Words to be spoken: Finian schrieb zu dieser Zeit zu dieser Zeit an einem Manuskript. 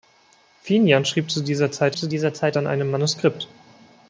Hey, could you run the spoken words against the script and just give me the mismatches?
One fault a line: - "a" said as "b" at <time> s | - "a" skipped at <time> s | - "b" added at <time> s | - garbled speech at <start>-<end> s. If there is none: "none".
none